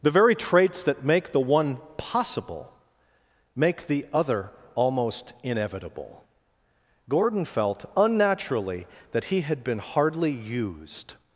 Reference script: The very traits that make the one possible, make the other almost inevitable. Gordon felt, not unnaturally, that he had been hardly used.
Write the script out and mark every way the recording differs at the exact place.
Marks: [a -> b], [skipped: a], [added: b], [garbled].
The very traits that make the one possible, make the other almost inevitable. Gordon felt, [skipped: not] unnaturally, that he had been hardly used.